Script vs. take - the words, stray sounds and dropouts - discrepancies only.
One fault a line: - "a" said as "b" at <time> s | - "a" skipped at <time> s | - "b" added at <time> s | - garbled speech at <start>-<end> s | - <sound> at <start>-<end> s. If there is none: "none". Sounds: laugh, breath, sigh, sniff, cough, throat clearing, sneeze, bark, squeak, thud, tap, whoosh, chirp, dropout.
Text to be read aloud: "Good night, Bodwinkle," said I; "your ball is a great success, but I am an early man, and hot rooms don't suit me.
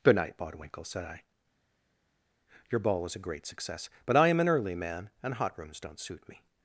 - "is" said as "was" at 3.0 s